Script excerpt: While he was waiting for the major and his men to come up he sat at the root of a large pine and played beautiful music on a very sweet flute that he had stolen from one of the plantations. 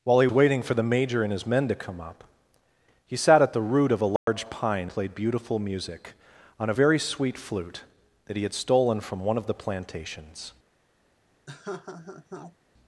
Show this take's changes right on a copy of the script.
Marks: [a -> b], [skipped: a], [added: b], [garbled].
While he [skipped: was] waiting for the major and his men to come up he sat at the root of a large pine [skipped: and] played beautiful music on a very sweet flute that he had stolen from one of the plantations.